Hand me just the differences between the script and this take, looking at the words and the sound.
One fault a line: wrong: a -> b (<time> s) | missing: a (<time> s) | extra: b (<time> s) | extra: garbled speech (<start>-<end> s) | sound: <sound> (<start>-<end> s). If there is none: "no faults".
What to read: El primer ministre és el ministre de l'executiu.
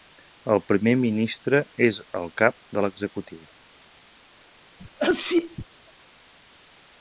wrong: ministre -> cap (2.4 s)
sound: sneeze (4.8-5.7 s)